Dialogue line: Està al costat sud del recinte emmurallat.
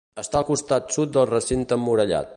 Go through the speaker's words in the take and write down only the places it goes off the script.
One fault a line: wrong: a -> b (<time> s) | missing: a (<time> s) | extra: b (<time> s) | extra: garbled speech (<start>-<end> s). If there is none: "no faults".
no faults